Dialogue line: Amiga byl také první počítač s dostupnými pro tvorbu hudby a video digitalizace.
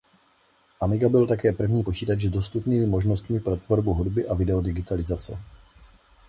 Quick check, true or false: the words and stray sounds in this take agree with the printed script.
false